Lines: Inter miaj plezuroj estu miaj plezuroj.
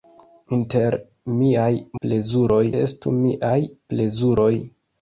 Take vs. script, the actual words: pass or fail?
pass